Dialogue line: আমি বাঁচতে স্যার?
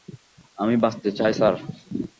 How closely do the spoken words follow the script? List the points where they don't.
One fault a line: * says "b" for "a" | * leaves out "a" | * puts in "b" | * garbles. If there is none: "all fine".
* puts in "চাই"